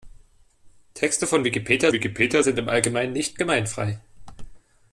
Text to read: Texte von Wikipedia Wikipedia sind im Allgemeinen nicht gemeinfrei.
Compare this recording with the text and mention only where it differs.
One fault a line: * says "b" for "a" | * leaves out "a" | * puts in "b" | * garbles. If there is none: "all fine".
all fine